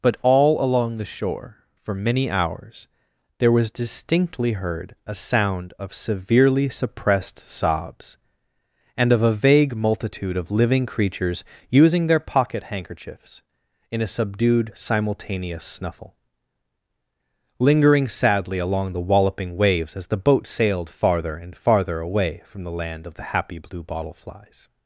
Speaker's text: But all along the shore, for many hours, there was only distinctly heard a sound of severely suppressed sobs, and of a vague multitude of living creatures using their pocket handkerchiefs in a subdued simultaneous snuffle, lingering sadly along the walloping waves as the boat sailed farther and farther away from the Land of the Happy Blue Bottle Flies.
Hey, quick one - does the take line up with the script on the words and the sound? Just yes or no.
no